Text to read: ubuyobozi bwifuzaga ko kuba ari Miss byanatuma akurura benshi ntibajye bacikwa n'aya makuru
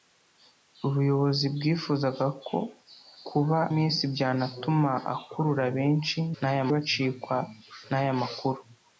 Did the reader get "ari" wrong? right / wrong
wrong